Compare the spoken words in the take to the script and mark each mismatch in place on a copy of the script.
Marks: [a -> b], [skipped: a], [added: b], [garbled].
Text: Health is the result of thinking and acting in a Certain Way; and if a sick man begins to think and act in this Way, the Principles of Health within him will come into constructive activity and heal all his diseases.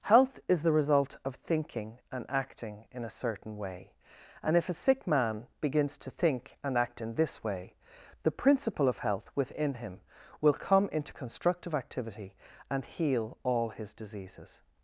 Health is the result of thinking and acting in a Certain Way; and if a sick man begins to think and act in this Way, the [Principles -> Principle] of Health within him will come into constructive activity and heal all his diseases.